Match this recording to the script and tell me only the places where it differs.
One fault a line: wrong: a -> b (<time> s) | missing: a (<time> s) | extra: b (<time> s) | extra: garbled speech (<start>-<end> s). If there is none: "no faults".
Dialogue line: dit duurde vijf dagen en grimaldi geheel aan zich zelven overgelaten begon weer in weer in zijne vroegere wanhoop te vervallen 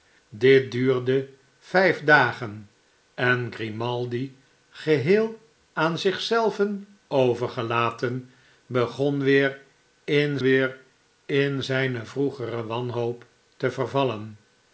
no faults